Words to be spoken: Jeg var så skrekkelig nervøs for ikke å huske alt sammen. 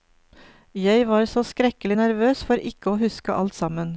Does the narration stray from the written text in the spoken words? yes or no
no